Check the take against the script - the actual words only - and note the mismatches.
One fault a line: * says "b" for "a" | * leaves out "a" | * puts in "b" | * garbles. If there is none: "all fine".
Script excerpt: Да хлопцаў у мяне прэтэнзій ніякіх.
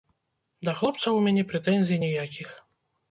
all fine